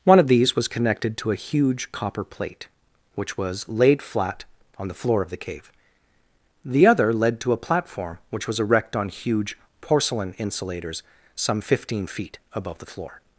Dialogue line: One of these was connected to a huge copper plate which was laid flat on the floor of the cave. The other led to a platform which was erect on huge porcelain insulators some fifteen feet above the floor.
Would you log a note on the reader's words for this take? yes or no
no